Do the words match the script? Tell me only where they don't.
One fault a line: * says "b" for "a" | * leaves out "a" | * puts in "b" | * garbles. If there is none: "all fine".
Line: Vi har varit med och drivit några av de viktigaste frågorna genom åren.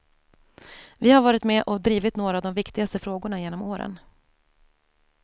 all fine